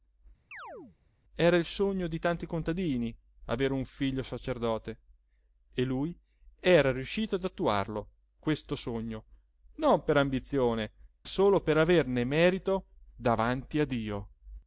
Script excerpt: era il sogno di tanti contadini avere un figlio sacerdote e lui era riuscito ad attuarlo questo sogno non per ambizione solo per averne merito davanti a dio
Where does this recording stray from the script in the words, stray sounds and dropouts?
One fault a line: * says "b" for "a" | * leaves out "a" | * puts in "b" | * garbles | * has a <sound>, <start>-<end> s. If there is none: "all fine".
* has a chirp, 0.5-1.0 s